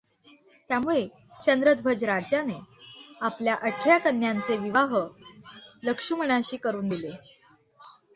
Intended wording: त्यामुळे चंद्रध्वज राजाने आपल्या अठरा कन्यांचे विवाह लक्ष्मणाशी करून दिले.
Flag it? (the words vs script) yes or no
no